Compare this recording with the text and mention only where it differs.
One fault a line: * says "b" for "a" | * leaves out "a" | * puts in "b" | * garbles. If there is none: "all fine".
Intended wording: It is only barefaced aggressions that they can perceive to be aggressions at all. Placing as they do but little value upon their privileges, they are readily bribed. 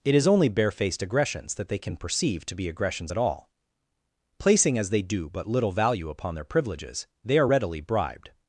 all fine